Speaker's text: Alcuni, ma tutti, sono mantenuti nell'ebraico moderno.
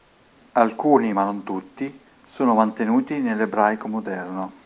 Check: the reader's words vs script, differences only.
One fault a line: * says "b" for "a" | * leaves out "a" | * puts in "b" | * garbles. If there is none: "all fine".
* puts in "non"